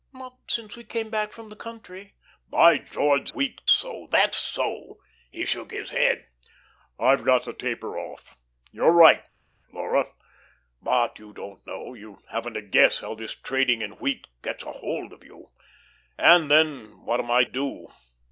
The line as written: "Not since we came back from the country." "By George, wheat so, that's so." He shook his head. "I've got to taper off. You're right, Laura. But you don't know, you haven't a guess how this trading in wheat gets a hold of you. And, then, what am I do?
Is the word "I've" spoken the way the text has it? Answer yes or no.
yes